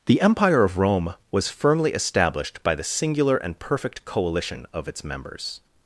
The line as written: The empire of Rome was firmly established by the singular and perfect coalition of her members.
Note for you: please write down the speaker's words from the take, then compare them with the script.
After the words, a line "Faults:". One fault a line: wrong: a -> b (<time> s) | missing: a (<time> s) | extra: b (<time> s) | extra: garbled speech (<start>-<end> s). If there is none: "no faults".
The empire of Rome was firmly established by the singular and perfect coalition of its members.
Faults:
wrong: her -> its (4.9 s)